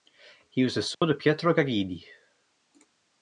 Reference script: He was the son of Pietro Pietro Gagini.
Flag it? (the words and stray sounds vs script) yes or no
yes